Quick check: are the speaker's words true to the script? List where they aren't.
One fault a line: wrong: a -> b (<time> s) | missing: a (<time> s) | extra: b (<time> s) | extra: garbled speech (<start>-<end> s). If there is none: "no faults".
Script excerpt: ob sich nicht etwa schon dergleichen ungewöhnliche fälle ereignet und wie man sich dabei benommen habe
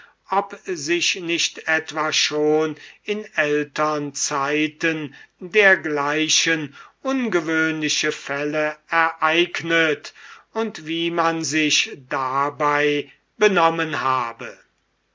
extra: in ältern zeiten (3.0 s)